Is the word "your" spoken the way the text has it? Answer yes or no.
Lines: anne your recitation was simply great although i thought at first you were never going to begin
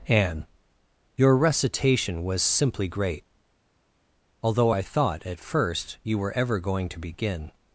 yes